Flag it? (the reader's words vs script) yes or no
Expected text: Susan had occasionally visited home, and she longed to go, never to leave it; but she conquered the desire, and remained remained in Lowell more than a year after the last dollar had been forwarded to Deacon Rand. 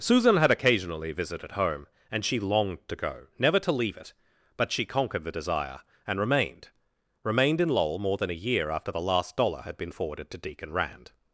no